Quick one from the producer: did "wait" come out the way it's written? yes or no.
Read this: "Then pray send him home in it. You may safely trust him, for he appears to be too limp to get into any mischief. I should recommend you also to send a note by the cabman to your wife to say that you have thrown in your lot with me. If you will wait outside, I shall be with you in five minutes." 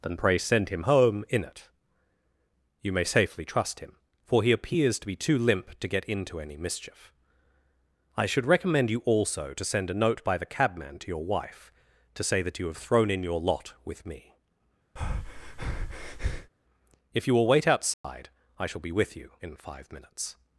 yes